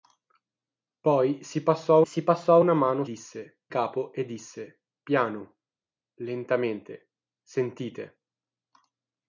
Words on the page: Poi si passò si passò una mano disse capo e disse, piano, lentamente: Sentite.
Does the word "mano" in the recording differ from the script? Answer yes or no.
no